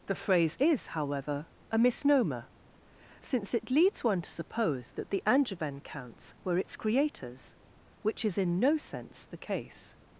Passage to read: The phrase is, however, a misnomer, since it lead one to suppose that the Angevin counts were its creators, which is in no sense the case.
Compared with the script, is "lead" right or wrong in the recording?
wrong